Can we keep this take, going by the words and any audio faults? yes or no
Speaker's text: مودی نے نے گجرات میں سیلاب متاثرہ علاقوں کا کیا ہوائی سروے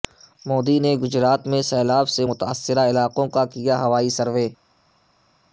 no